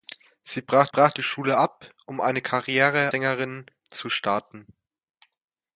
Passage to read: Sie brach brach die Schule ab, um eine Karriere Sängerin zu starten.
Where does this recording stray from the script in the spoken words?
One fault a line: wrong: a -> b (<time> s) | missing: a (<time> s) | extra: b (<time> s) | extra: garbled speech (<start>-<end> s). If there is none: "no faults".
no faults